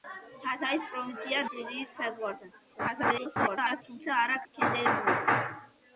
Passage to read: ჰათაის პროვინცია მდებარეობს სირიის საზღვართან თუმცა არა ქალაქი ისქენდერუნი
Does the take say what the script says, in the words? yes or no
no